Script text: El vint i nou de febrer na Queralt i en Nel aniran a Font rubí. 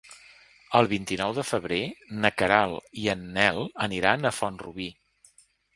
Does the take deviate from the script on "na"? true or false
false